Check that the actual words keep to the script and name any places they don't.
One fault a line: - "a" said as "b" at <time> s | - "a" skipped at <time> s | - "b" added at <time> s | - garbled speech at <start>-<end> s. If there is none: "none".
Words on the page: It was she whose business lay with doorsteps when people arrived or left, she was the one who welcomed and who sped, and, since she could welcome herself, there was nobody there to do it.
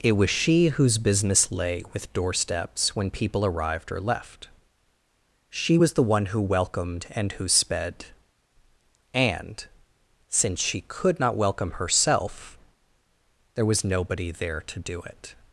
- "not" added at 11.2 s